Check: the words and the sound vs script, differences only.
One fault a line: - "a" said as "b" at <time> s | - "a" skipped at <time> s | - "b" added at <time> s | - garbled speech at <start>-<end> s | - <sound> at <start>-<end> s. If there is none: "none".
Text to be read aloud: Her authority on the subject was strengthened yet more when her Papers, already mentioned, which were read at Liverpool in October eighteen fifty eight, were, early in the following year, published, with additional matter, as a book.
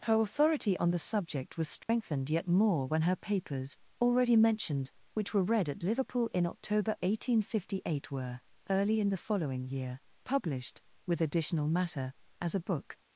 - dropout at 1.8-1.9 s